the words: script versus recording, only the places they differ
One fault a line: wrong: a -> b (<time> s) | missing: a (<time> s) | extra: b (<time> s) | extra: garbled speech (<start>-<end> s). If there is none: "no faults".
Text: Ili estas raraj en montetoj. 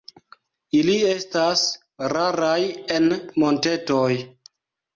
no faults